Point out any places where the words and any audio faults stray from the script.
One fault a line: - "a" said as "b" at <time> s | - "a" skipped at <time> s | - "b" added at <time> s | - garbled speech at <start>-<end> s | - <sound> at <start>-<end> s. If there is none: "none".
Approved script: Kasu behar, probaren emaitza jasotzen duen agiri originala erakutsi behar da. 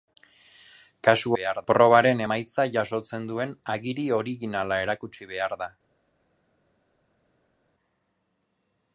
none